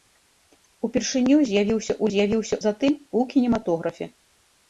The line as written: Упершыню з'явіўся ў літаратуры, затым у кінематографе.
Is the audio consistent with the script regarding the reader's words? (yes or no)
no